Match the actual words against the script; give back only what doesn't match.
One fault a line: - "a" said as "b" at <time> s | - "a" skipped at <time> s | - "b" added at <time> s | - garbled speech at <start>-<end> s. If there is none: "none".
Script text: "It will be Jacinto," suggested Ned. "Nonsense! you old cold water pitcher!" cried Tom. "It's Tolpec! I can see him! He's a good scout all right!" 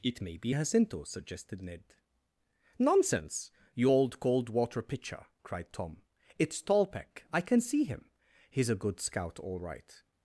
- "will" said as "may" at 0.2 s